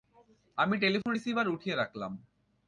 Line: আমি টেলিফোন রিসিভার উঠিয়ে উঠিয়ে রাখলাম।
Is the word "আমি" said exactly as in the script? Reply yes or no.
yes